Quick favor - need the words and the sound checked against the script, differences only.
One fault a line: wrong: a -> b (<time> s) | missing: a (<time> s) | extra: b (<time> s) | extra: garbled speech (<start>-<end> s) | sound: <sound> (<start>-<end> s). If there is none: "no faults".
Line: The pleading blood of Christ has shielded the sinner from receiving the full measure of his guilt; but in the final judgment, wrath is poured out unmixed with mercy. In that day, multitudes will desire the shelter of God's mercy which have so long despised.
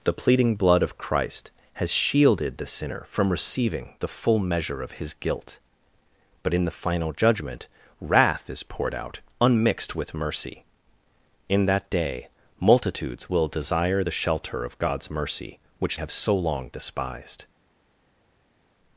no faults